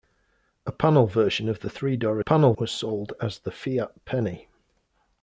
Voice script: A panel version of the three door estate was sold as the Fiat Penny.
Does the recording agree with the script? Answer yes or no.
no